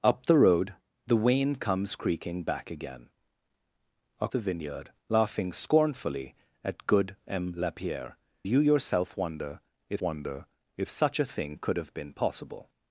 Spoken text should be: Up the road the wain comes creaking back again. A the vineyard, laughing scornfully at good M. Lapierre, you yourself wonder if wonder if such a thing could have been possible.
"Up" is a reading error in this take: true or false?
false